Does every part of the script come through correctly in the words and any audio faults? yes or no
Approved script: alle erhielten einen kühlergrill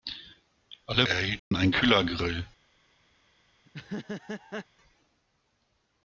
no